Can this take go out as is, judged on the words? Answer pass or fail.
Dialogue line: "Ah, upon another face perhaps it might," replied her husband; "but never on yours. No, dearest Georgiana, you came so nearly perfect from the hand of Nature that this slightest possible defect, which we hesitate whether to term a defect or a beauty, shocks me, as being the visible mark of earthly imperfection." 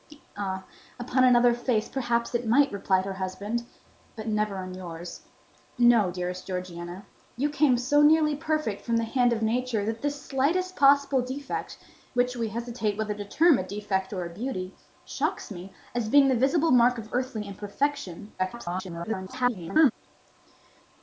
fail